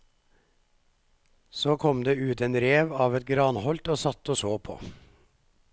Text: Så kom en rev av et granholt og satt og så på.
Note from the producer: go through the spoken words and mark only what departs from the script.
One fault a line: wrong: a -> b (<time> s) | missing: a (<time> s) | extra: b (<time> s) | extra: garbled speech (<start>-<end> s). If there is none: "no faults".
extra: det ut (2.0 s)